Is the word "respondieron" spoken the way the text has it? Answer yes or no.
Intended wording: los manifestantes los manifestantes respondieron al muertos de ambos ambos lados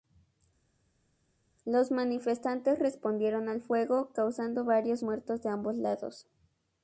no